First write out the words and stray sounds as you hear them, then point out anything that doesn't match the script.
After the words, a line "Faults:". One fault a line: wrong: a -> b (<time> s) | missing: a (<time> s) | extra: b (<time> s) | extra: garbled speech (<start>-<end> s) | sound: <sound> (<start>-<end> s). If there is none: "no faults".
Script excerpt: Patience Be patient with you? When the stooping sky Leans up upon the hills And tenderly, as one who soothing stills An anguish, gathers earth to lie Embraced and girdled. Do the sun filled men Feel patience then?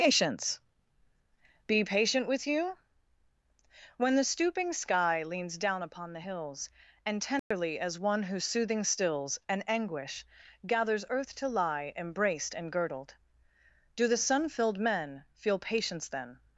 Patience Be patient with you? When the stooping sky Leans down upon the hills And tenderly, as one who soothing stills An anguish, gathers earth to lie Embraced and girdled. Do the sun filled men Feel patience then?
Faults:
wrong: up -> down (5.6 s)
sound: dropout (7.4-7.5 s)